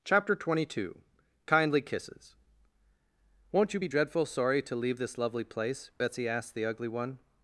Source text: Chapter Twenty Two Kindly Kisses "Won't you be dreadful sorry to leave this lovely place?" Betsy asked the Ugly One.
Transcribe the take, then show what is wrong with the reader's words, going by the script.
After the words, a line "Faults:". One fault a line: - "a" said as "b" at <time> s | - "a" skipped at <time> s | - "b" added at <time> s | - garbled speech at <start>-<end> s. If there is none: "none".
Chapter Twenty Two Kindly Kisses "Won't you be dreadful sorry to leave this lovely place?" Betsy asked the Ugly One.
Faults:
none